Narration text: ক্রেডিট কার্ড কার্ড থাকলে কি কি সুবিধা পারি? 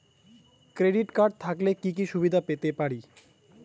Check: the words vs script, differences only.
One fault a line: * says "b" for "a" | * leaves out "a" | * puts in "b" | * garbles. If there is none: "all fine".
* leaves out "কার্ড"
* puts in "পেতে"